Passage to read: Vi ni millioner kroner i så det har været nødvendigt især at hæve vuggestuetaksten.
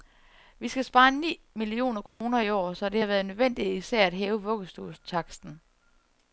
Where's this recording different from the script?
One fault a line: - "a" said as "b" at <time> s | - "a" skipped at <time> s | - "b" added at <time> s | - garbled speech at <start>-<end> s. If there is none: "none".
- "skal spare" added at 0.7 s
- "år" added at 2.5 s